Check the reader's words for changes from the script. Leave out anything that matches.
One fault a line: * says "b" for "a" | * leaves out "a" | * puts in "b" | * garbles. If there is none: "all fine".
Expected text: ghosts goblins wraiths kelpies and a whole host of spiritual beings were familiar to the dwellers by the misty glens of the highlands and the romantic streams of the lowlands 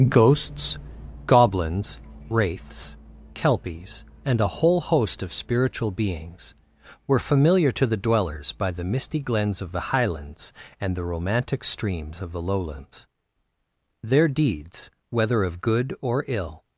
* puts in "their deeds whether of good or ill"